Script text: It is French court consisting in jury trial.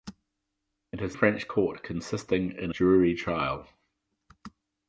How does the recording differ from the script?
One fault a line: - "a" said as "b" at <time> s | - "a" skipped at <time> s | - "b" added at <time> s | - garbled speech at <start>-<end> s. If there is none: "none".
none